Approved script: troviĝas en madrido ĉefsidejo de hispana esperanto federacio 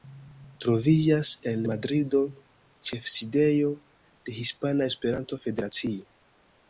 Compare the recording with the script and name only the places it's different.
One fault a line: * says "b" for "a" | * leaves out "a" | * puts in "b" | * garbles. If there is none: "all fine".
all fine